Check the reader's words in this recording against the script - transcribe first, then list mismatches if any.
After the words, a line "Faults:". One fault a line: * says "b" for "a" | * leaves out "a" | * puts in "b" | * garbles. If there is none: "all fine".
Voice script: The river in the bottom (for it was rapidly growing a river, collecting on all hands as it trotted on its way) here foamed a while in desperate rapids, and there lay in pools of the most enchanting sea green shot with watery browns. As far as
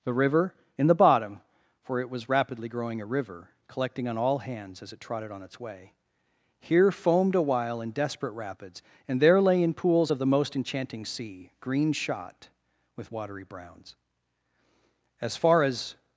The river in the bottom (for it was rapidly growing a river, collecting on all hands as it trotted on its way) here foamed a while in desperate rapids, and there lay in pools of the most enchanting sea green shot with watery browns. As far as
Faults:
all fine